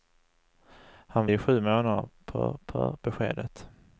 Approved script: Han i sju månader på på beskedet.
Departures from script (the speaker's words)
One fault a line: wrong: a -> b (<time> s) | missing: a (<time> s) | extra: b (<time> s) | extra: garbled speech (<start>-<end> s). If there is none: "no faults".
no faults